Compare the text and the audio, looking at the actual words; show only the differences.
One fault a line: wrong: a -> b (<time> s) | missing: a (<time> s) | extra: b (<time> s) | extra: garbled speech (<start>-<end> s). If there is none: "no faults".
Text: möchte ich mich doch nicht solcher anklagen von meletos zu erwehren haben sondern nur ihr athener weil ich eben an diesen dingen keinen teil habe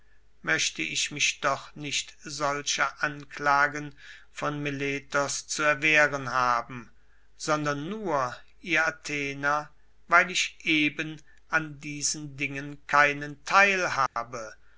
no faults